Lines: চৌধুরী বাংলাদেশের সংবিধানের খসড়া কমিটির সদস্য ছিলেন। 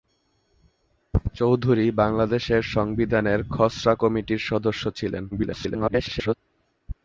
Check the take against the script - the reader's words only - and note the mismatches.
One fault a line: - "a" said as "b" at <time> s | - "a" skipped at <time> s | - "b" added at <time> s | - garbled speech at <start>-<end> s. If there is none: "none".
- garbled speech at 5.3-6.3 s